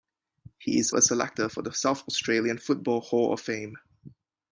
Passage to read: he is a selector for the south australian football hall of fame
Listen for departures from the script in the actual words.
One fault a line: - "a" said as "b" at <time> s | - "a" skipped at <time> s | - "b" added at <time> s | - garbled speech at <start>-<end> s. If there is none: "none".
none